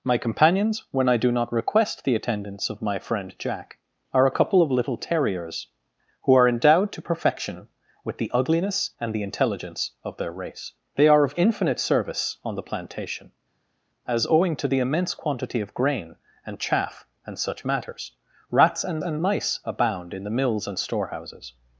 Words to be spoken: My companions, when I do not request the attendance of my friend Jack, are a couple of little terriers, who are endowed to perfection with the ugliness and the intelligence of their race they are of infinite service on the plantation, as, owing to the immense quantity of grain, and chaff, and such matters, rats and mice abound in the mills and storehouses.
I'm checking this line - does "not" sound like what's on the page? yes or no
yes